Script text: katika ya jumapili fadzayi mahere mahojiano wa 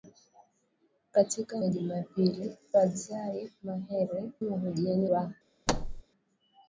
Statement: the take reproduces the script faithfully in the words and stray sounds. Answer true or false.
false